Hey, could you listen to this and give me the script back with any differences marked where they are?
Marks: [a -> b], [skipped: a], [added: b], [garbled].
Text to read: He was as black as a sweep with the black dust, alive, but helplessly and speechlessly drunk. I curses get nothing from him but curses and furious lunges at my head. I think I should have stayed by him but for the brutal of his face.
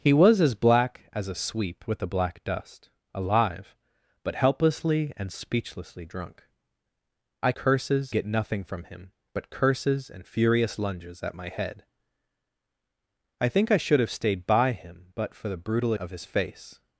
He was as black as a sweep with the black dust, alive, but helplessly and speechlessly drunk. I curses get nothing from him but curses and furious lunges at my head. I think I should have stayed by him but for the brutal of his face.